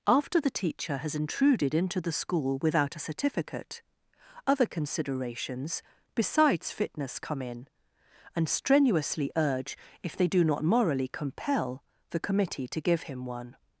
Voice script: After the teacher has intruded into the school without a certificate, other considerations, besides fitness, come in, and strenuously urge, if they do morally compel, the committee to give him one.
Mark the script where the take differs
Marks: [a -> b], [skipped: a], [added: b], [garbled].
After the teacher has intruded into the school without a certificate, other considerations, besides fitness, come in, and strenuously urge, if they do [added: not] morally compel, the committee to give him one.